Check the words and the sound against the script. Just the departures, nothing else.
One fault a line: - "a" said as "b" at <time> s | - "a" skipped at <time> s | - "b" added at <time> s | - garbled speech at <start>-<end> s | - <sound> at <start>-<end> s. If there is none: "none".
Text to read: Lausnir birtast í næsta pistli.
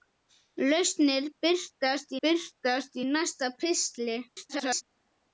- "birtast" added at 2.3 s
- garbled speech at 4.3-4.8 s